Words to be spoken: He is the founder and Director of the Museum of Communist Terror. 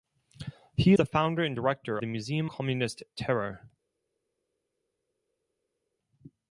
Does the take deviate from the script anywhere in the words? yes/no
yes